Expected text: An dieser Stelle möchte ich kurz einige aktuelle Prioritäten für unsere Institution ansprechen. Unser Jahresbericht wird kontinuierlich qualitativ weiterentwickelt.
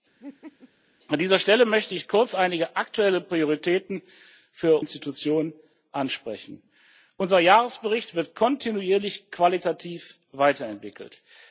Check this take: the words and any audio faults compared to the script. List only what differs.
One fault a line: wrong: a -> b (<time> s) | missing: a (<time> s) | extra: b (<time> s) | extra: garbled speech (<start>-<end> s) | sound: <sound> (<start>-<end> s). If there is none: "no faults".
sound: laugh (0.2-0.7 s)
missing: unsere (4.8 s)